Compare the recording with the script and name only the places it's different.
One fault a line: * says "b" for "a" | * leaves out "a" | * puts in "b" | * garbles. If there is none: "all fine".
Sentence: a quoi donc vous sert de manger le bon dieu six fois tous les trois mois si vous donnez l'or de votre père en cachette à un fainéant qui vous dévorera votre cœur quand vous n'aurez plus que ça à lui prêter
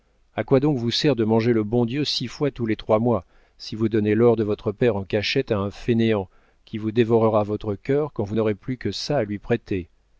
all fine